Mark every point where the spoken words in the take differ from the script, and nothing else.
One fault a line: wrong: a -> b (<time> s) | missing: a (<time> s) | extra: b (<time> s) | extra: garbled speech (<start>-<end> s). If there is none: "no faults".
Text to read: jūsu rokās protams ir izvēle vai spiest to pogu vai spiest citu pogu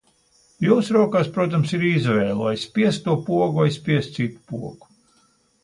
no faults